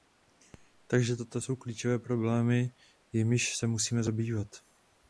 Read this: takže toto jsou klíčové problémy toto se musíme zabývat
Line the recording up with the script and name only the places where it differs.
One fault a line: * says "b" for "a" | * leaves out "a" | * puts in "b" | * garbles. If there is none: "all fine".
* says "jimiž" for "toto"